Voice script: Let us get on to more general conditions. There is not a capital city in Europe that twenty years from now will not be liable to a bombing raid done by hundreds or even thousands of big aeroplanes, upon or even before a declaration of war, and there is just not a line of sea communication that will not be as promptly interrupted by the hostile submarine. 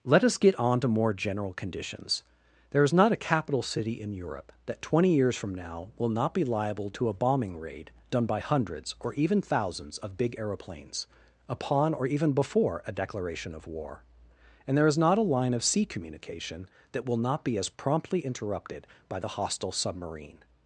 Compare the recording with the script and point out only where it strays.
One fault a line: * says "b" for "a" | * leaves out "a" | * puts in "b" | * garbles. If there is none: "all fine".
* leaves out "just"